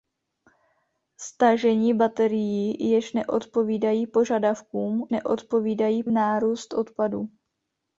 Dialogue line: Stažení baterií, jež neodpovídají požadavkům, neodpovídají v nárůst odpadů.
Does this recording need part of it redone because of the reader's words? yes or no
no